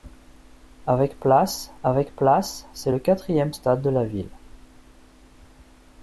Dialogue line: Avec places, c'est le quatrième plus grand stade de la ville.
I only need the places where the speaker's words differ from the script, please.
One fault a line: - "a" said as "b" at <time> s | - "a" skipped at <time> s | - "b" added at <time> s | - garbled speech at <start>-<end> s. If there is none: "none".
- "avec places" added at 1.8 s
- "plus grand" skipped at 3.5 s